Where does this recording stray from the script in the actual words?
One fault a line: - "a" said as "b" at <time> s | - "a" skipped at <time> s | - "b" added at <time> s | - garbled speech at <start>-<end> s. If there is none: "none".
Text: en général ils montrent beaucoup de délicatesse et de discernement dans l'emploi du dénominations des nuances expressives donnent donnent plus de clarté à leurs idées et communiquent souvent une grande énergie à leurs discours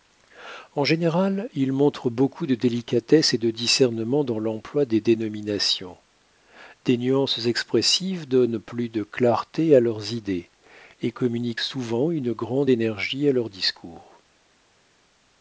- "du" said as "des" at 4.8 s
- "donnent" skipped at 8.6 s